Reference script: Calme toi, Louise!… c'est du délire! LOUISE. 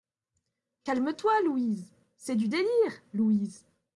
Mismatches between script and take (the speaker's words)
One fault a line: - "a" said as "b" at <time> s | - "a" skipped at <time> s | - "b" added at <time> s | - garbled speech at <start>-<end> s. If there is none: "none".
none